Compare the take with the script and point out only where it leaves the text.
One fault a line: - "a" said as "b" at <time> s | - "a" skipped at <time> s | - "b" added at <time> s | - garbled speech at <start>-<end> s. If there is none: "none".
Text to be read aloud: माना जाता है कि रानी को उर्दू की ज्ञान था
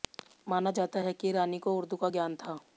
- "की" said as "का" at 2.0 s